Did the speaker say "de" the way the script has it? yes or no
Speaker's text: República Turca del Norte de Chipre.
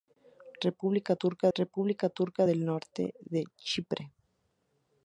yes